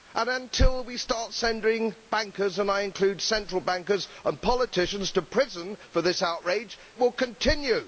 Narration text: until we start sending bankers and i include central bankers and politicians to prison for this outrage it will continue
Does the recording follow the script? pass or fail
fail